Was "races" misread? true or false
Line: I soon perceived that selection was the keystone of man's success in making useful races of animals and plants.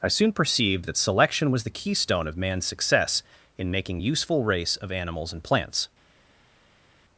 true